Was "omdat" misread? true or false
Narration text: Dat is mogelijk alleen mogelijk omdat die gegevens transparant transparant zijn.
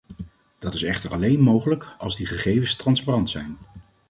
true